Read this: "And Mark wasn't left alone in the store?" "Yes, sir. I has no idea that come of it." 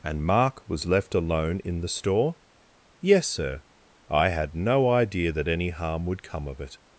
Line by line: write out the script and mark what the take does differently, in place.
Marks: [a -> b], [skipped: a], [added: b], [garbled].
"And Mark [wasn't -> was] left alone in the store?" "Yes, sir. I [has -> had] no idea that [added: any harm would] come of it."